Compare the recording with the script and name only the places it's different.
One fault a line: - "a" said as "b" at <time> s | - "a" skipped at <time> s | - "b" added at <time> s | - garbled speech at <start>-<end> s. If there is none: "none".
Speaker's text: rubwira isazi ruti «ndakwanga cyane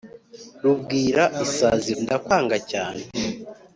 - "ruti" skipped at 1.9 s